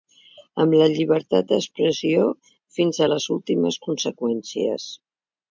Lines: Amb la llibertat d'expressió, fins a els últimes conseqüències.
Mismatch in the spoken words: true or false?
true